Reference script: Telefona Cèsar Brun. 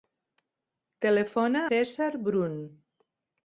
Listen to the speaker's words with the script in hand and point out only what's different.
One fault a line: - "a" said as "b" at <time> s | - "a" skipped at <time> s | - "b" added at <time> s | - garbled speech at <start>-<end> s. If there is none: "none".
none